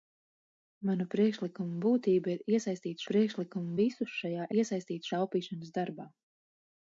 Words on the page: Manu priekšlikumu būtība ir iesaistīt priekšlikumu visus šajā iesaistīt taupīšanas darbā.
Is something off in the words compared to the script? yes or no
no